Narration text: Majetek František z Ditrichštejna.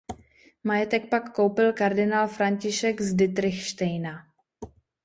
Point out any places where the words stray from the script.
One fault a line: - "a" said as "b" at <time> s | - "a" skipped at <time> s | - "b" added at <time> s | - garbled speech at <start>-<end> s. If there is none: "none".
- "pak koupil kardinál" added at 1.1 s